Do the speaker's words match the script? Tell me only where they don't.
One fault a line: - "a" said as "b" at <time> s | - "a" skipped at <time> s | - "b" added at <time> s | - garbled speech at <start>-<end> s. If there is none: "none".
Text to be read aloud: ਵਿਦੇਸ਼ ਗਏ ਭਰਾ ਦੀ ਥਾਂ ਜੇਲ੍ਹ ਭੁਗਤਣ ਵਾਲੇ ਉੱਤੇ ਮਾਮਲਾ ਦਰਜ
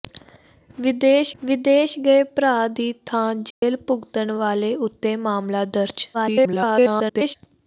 - "ਵਿਦੇਸ਼" added at 1.4 s
- garbled speech at 6.1-7.4 s